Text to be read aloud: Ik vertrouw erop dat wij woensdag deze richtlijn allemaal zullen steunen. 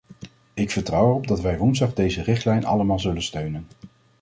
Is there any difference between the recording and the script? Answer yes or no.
no